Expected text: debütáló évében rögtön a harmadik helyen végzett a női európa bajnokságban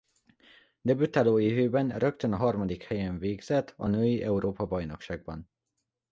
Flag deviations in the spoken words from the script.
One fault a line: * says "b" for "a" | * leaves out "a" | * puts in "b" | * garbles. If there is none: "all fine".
all fine